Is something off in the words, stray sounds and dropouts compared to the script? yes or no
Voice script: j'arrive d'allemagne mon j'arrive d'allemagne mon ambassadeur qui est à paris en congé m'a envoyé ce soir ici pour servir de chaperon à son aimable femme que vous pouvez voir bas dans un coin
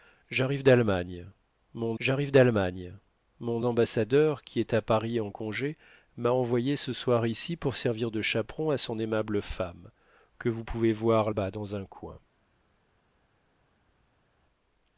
no